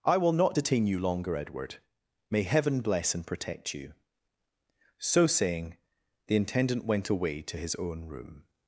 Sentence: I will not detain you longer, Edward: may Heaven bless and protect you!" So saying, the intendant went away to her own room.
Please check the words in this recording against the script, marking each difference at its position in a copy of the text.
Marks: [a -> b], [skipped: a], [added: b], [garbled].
I will not detain you longer, Edward: may Heaven bless and protect you!" So saying, the intendant went away to [her -> his] own room.